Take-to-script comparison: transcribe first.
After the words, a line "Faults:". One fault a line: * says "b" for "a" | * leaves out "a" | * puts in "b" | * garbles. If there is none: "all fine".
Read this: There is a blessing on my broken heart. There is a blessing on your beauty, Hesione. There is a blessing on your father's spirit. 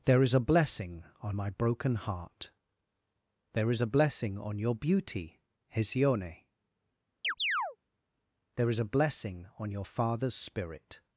There is a blessing on my broken heart. There is a blessing on your beauty, Hesione. There is a blessing on your father's spirit.
Faults:
all fine